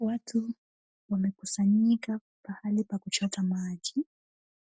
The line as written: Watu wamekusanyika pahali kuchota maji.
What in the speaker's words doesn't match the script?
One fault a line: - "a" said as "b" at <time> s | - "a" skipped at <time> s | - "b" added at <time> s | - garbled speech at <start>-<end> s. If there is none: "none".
- "pa" added at 2.8 s